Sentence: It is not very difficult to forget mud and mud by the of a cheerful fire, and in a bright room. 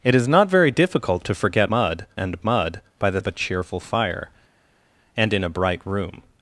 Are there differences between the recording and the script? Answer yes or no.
no